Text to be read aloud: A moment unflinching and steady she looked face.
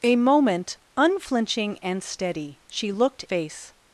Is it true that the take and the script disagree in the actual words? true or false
false